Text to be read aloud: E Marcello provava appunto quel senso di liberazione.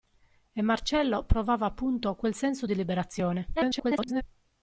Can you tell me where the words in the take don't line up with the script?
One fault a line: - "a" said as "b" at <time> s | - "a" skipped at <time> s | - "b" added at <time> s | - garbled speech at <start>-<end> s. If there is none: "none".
- garbled speech at 3.6-4.2 s